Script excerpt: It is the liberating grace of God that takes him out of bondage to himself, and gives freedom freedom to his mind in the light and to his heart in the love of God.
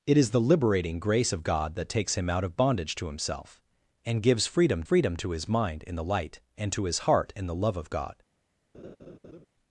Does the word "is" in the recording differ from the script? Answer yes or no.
no